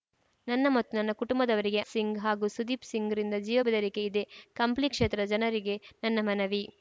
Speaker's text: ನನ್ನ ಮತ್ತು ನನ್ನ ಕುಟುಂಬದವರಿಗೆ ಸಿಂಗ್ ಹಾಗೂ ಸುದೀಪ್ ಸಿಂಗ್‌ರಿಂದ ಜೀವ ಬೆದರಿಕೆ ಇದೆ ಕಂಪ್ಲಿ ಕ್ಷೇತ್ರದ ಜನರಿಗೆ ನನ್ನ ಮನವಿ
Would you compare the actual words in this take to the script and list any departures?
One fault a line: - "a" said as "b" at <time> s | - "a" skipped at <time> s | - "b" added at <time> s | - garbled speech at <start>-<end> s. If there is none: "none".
none